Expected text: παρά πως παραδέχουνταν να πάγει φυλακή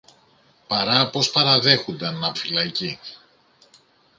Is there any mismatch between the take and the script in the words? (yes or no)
yes